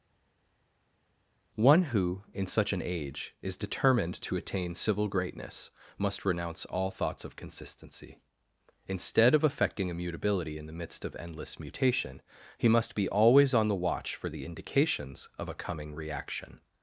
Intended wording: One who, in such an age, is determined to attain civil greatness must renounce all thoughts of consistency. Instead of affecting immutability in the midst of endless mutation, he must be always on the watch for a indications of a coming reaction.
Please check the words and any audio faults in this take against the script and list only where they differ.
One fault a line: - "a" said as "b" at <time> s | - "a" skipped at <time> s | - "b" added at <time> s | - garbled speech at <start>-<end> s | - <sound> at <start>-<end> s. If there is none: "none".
- "a" said as "the" at 14.3 s